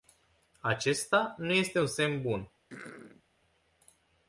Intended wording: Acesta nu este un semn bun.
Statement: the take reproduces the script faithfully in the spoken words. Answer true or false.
true